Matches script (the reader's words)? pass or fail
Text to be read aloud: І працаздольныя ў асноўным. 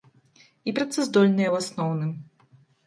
pass